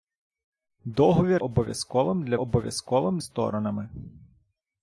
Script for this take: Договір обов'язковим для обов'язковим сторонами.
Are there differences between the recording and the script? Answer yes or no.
no